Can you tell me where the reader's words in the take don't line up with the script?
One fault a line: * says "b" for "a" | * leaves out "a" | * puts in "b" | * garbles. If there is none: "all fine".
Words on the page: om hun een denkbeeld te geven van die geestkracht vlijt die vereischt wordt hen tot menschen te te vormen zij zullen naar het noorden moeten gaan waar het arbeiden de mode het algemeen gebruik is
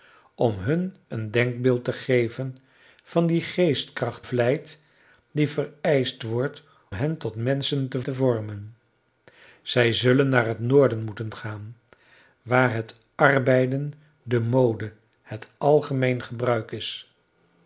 all fine